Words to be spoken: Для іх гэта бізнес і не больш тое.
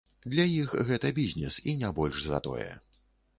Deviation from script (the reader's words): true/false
true